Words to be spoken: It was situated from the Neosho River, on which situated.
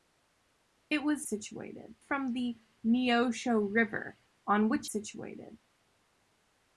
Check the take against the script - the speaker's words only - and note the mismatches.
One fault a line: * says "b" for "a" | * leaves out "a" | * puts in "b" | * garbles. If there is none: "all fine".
all fine